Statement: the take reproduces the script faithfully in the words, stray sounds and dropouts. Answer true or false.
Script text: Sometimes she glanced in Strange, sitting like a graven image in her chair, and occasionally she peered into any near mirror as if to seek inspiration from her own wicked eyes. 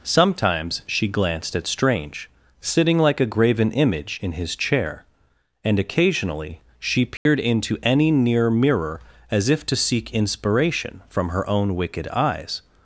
false